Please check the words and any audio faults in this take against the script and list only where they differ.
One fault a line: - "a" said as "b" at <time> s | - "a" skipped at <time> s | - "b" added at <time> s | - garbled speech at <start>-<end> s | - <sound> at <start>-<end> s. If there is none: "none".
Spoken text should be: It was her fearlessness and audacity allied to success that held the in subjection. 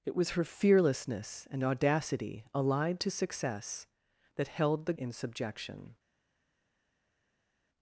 none